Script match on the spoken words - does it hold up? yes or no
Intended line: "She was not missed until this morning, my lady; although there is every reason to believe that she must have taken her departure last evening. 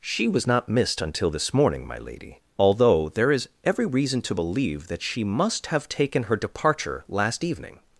yes